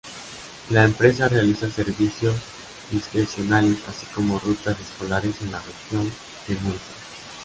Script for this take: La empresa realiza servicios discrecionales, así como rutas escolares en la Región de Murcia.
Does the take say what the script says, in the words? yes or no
yes